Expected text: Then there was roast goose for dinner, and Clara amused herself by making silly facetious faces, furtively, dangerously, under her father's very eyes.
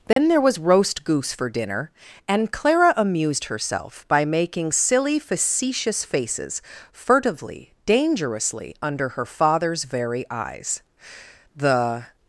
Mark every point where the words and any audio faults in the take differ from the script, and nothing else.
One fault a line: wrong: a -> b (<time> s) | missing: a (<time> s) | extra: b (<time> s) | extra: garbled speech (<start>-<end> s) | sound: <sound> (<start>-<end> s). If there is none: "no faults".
sound: dropout (0.1-0.2 s)
extra: The (11.6 s)